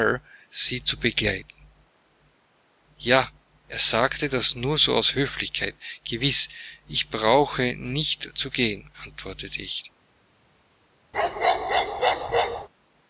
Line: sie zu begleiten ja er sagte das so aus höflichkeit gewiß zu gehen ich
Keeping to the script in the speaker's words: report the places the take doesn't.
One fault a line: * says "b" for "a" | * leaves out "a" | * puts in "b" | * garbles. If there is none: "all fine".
* puts in "nur"
* puts in "ich brauche nicht"
* puts in "antwortete"